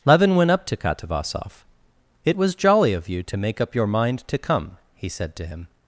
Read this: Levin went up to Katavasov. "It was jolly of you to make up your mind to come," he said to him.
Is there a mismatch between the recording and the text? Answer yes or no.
no